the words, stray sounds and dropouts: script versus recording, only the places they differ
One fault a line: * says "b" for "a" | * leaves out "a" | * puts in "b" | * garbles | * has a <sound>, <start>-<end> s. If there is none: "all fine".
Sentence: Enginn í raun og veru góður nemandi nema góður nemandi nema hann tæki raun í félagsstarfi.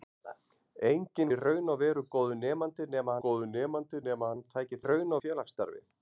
all fine